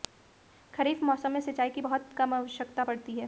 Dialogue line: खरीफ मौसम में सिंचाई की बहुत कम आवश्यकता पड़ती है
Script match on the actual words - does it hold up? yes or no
yes